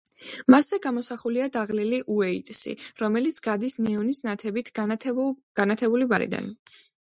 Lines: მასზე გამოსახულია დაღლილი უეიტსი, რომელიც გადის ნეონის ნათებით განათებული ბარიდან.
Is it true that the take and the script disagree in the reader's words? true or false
false